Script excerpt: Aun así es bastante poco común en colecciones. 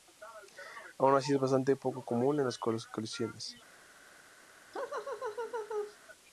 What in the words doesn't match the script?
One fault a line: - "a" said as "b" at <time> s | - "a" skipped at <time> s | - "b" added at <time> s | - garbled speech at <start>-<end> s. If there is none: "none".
- "las" added at 2.5 s